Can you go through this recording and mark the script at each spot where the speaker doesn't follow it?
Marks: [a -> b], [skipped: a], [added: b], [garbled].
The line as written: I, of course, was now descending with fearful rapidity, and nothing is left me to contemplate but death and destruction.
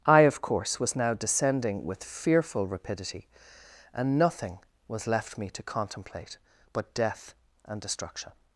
I, of course, was now descending with fearful rapidity, and nothing [is -> was] left me to contemplate but death and destruction.